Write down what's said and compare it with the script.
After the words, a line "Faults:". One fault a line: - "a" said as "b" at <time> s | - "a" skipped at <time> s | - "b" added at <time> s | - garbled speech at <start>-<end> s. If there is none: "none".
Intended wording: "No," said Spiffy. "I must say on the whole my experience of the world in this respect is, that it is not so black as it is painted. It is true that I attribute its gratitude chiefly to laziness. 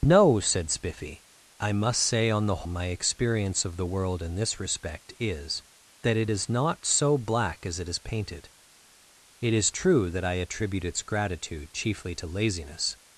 "No," said Spiffy. "I must say on the my experience of the world in this respect is, that it is not so black as it is painted. It is true that I attribute its gratitude chiefly to laziness.
Faults:
- "whole" skipped at 2.6 s